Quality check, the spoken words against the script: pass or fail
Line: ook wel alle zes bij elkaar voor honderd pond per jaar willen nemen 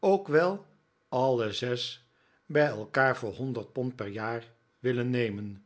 pass